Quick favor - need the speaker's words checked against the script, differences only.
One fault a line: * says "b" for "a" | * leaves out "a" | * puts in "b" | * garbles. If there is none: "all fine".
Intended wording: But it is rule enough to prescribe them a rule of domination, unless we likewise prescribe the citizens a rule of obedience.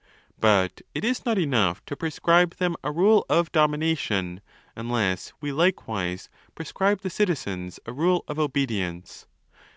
* says "not" for "rule"